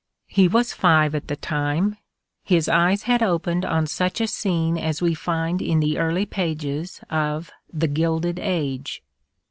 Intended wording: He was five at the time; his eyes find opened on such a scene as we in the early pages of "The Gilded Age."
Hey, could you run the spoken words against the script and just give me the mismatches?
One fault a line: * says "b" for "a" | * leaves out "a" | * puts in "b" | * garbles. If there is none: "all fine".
* says "had" for "find"
* puts in "find"